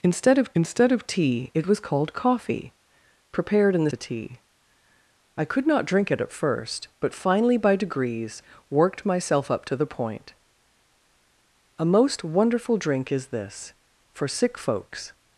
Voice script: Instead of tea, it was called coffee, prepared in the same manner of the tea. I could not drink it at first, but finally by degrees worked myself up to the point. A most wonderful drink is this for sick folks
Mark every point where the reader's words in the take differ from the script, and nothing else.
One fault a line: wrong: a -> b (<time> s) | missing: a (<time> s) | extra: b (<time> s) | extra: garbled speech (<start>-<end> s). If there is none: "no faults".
extra: instead of (0.5 s)
missing: same manner of (3.9 s)